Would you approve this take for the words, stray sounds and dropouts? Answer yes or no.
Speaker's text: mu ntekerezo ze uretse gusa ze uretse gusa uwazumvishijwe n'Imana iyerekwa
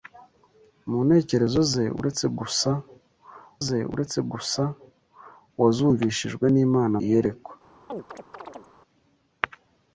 no